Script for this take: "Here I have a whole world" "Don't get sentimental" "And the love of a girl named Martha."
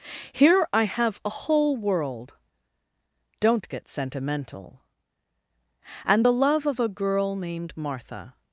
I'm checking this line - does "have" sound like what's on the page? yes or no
yes